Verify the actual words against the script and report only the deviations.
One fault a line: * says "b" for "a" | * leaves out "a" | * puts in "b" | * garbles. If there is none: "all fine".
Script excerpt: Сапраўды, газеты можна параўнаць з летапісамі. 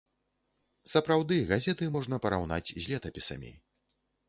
all fine